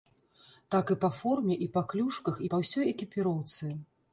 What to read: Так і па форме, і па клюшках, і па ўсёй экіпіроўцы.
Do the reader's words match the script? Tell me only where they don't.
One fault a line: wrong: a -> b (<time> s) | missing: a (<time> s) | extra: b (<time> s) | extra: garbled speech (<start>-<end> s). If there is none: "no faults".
no faults